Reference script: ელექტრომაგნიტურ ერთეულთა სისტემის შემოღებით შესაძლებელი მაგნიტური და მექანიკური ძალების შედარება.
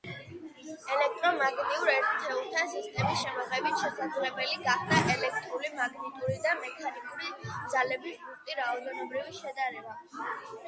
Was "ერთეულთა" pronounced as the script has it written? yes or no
yes